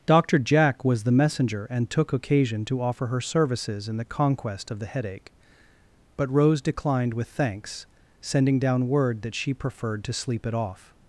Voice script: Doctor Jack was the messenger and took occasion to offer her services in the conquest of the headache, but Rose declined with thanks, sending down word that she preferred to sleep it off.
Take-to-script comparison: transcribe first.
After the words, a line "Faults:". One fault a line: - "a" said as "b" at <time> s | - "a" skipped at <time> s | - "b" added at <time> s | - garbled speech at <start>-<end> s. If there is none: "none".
Doctor Jack was the messenger and took occasion to offer her services in the conquest of the headache, but Rose declined with thanks, sending down word that she preferred to sleep it off.
Faults:
none